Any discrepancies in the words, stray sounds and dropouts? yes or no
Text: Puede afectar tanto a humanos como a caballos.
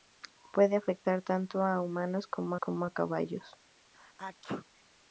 yes